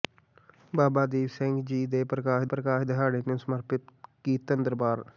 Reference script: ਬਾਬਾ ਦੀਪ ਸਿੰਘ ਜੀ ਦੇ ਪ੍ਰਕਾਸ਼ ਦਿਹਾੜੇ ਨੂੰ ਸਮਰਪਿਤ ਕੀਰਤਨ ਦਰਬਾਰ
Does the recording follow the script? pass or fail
fail